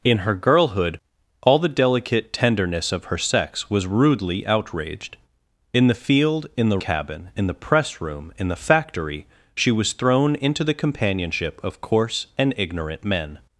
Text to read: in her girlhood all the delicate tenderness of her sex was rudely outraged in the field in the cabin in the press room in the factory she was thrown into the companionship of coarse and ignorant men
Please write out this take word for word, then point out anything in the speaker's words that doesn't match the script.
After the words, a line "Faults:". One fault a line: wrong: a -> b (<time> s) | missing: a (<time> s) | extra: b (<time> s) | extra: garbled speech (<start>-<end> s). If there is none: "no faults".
in her girlhood all the delicate tenderness of her sex was rudely outraged in the field in the cabin in the press room in the factory she was thrown into the companionship of coarse and ignorant men
Faults:
no faults